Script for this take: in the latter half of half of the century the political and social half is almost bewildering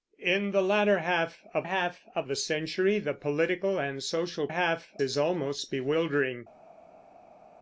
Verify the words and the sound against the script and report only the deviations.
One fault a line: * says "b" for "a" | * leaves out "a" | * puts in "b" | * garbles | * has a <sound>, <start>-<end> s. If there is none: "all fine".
all fine